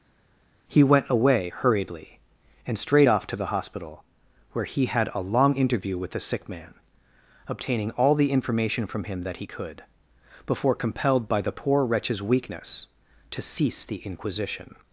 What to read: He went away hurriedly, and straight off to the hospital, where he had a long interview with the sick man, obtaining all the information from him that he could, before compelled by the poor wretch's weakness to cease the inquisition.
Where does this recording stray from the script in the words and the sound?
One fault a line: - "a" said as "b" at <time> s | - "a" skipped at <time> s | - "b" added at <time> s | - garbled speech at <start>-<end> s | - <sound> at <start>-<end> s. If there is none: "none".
none